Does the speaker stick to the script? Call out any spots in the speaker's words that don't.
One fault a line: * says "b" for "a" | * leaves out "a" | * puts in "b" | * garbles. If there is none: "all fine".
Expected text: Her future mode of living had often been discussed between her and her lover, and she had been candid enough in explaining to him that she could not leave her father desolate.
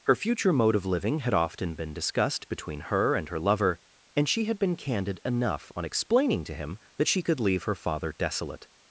* says "on" for "in"
* leaves out "not"